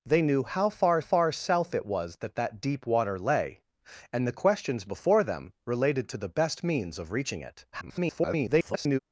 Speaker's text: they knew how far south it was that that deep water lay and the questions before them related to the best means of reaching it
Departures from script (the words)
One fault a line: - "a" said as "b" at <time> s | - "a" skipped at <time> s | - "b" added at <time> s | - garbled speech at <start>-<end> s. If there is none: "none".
- "far" added at 1.0 s
- garbled speech at 7.7-9.0 s